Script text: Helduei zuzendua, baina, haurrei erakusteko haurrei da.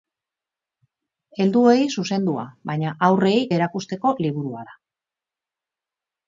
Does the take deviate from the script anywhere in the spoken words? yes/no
yes